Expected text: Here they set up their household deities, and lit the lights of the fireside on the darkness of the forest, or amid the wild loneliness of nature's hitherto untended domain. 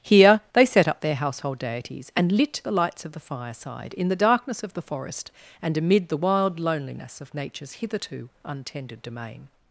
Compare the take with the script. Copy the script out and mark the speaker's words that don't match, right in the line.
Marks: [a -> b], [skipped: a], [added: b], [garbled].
Here they set up their household deities, and lit the lights of the fireside [on -> in] the darkness of the forest, [or -> and] amid the wild loneliness of nature's hitherto untended domain.